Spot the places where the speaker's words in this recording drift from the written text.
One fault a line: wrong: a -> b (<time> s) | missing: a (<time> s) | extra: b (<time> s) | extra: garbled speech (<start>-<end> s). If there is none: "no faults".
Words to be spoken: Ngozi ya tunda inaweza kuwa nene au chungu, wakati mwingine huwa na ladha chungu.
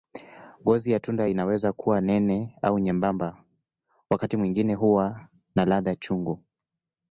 wrong: chungu -> nyembamba (2.8 s)